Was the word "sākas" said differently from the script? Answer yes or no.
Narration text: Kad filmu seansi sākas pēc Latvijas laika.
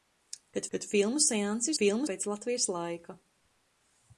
yes